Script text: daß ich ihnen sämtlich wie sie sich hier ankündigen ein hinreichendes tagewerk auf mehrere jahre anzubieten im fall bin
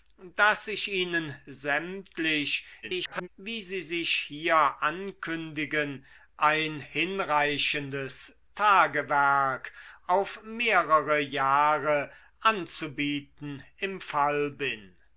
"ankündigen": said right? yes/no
yes